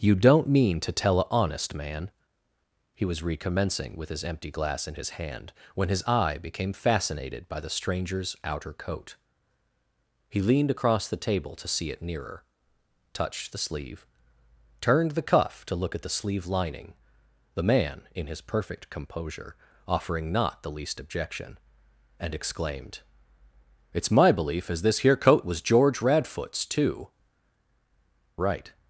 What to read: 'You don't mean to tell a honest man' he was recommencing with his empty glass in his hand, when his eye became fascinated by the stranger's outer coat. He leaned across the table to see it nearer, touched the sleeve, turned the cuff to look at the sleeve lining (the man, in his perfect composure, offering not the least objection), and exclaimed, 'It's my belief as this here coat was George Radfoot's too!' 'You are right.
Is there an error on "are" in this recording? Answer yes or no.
yes